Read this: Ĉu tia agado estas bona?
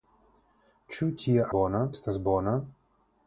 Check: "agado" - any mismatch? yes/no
yes